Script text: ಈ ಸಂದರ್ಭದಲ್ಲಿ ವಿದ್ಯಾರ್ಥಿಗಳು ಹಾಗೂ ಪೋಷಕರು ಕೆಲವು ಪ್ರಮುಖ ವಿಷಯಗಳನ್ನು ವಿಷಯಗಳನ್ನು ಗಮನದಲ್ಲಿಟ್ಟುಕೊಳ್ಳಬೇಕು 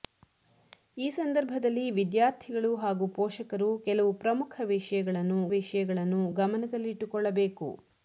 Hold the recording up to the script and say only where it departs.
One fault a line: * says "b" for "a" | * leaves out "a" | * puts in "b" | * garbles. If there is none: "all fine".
all fine